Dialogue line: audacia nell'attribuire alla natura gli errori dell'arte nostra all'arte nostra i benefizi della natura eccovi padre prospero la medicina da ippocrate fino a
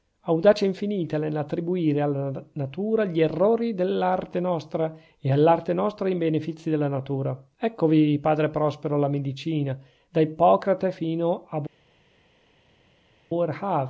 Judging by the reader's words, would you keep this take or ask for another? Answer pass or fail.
fail